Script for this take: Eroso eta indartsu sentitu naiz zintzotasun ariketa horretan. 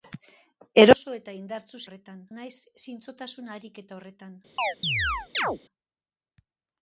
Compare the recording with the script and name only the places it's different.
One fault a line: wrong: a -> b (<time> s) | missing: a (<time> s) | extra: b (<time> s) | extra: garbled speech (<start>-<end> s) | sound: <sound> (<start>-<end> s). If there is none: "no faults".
wrong: sentitu -> horretan (1.9 s)
sound: chirp (4.6-5.6 s)